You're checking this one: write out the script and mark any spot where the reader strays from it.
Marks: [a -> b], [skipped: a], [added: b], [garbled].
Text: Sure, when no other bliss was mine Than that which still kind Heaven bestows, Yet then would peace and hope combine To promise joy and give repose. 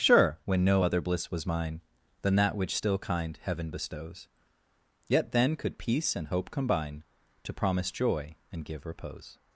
Sure, when no other bliss was mine Than that which still kind Heaven bestows, Yet then [would -> could] peace and hope combine To promise joy and give repose.